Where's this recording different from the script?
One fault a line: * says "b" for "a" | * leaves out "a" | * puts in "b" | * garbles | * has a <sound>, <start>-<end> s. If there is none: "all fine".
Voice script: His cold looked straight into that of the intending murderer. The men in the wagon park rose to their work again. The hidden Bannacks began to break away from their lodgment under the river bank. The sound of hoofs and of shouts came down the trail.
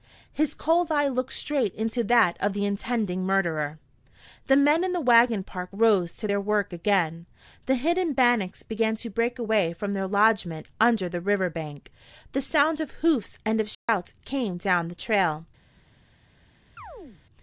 * puts in "eye"
* has a dropout, 13.7-13.9 s
* has a chirp, 16.8-17.2 s